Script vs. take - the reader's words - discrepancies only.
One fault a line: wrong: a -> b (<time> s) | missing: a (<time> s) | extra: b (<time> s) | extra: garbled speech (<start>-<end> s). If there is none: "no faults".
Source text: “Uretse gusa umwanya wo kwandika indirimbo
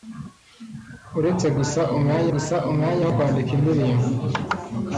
extra: gusa umwanya (2.3 s)